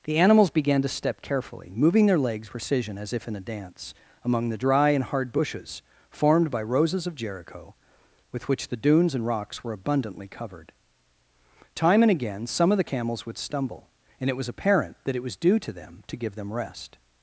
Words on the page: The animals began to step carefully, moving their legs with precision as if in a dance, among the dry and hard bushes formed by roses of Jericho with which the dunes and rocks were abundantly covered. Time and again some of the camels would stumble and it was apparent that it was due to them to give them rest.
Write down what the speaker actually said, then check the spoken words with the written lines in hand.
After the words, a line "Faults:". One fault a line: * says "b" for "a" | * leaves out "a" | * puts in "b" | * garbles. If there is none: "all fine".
The animals began to step carefully, moving their legs precision as if in a dance, among the dry and hard bushes formed by roses of Jericho with which the dunes and rocks were abundantly covered. Time and again some of the camels would stumble and it was apparent that it was due to them to give them rest.
Faults:
* leaves out "with"